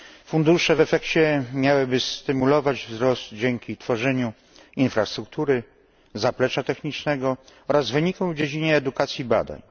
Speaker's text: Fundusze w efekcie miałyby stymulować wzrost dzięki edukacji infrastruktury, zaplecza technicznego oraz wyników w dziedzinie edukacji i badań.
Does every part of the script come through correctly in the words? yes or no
no